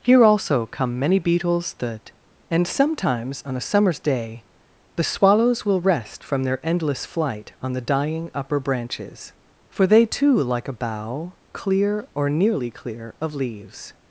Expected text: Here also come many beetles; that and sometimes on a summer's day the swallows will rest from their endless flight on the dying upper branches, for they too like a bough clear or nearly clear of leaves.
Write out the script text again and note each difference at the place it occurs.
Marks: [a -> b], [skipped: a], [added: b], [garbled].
Here also come many beetles; that and sometimes on a summer's day the swallows will rest from their endless flight on the dying upper branches, for they too like a bough clear or nearly clear of leaves.